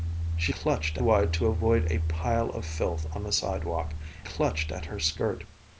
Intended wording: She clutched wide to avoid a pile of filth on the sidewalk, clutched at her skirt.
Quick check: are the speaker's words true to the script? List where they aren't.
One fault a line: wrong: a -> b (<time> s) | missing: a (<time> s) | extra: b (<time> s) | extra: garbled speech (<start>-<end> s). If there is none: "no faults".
no faults